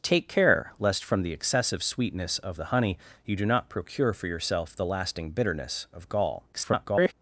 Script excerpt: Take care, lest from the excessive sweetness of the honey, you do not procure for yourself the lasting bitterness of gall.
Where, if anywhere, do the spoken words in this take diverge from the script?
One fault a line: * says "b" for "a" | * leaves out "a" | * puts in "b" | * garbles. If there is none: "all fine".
* garbles